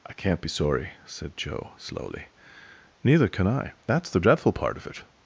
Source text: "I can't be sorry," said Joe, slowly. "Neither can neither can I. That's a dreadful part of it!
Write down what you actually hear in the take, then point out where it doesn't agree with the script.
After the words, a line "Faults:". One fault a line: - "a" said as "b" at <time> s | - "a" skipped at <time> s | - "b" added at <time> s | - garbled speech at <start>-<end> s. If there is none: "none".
"I can't be sorry," said Joe, slowly. "Neither can I. That's the dreadful part of it!
Faults:
- "neither can" skipped at 3.5 s
- "a" said as "the" at 4.1 s